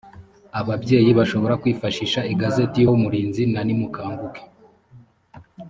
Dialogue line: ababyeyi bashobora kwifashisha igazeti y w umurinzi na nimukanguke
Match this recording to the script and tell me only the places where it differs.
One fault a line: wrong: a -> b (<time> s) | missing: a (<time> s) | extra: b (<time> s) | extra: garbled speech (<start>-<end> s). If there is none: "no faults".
no faults